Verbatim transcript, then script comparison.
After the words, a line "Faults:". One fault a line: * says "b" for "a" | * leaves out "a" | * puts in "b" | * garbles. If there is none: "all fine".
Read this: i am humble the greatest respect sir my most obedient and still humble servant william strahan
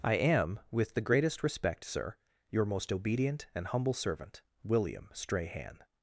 i am with the greatest respect sir your most obedient and humble servant william strahan
Faults:
* says "with" for "humble"
* says "your" for "my"
* leaves out "still"